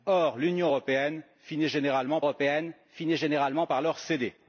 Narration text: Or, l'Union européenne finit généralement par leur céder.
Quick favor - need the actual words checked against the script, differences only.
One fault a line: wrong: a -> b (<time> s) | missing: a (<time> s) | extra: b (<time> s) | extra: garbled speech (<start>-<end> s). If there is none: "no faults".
extra: européenne finit généralement (2.2 s)